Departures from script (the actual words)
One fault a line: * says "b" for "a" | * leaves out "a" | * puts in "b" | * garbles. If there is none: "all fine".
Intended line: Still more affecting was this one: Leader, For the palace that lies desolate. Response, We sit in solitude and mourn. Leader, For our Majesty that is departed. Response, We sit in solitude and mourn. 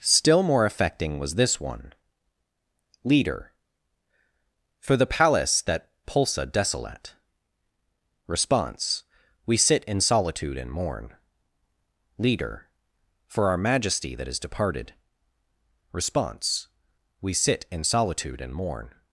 * says "pulsa" for "lies"